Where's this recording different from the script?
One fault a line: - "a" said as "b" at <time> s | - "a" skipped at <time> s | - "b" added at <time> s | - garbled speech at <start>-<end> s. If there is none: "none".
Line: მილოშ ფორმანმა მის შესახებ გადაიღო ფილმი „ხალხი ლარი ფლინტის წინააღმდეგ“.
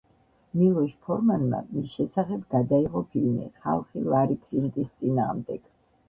none